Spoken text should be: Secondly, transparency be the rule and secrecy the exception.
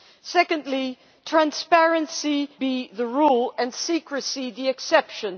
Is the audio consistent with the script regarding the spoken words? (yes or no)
yes